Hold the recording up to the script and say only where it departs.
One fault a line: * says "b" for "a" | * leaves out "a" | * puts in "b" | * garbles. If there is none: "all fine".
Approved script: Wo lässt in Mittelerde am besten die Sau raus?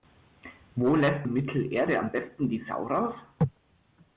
all fine